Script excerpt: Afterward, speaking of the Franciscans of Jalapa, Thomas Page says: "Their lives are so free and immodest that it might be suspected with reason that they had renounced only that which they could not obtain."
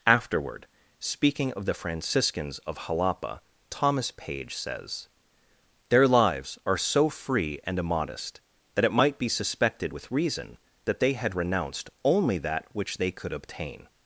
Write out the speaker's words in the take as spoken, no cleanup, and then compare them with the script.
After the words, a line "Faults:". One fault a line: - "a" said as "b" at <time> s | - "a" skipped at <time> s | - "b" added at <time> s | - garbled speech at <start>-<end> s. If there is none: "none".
Afterward, speaking of the Franciscans of Jalapa, Thomas Page says: "Their lives are so free and immodest that it might be suspected with reason that they had renounced only that which they could obtain."
Faults:
- "not" skipped at 13.3 s